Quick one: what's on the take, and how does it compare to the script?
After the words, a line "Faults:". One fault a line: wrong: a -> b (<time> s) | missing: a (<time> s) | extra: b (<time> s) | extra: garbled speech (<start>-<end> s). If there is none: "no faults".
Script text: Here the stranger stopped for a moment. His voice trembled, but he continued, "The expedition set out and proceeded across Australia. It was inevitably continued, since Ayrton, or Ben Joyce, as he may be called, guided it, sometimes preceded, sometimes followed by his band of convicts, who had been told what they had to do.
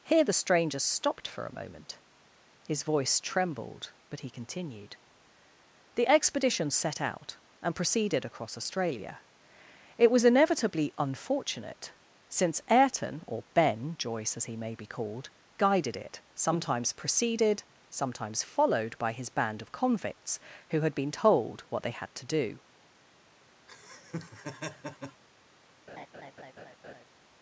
Here the stranger stopped for a moment. His voice trembled, but he continued, "The expedition set out and proceeded across Australia. It was inevitably unfortunate, since Ayrton, or Ben Joyce, as he may be called, guided it, sometimes preceded, sometimes followed by his band of convicts, who had been told what they had to do.
Faults:
wrong: continued -> unfortunate (11.0 s)